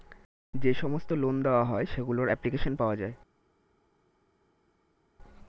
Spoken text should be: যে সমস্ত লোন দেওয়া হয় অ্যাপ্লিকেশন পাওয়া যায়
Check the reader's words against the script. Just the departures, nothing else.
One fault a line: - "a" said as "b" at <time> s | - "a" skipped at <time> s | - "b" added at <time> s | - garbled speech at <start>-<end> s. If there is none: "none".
- "সেগুলোর" added at 1.9 s